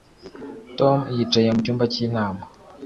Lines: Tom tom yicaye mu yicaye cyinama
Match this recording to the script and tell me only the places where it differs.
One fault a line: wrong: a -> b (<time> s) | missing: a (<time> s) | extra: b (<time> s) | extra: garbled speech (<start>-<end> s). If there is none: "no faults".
missing: tom (1.0 s)
wrong: yicaye -> cyumba (1.6 s)